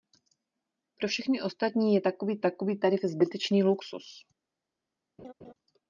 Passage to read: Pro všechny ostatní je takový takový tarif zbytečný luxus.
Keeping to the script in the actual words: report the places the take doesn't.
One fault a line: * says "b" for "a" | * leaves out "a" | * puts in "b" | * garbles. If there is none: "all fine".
all fine